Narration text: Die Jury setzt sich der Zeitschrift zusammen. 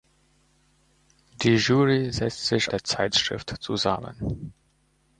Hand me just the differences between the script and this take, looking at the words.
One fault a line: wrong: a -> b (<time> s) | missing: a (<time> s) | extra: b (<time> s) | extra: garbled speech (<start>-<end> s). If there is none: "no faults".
no faults